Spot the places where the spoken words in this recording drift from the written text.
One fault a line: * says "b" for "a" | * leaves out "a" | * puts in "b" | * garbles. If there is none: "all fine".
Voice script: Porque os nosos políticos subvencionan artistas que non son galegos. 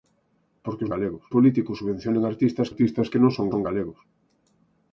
* says "galegos" for "nosos"
* puts in "artistas"
* puts in "son"